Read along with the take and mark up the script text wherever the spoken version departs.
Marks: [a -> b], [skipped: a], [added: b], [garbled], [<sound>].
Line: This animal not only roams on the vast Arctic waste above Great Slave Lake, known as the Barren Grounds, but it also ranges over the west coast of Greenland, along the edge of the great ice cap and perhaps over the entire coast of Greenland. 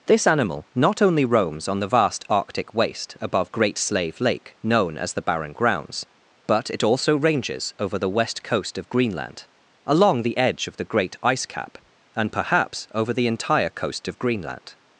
This animal not only roams on the vast Arctic waste above Great Slave Lake, known as the Barren Grounds, but it also ranges over the west coast of Greenland, along the edge of the great ice cap and perhaps over the entire coast of Greenland.